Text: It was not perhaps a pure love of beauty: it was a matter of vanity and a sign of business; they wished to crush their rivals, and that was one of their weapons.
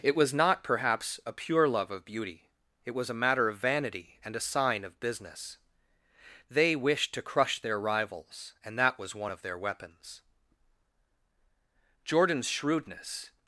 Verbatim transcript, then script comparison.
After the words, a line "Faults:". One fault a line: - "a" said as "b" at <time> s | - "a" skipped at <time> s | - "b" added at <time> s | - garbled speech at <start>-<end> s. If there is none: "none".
It was not perhaps a pure love of beauty: it was a matter of vanity and a sign of business; they wished to crush their rivals, and that was one of their weapons. Jordan's shrewdness
Faults:
- "Jordan's shrewdness" added at 12.0 s